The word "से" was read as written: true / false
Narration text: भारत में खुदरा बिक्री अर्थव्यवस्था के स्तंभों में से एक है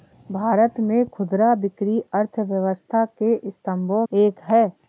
false